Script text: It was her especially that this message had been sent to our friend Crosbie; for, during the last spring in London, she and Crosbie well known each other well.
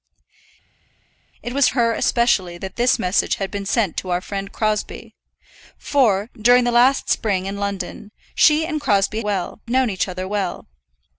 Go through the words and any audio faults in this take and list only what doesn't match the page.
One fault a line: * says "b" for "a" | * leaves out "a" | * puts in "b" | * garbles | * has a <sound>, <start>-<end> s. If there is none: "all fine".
all fine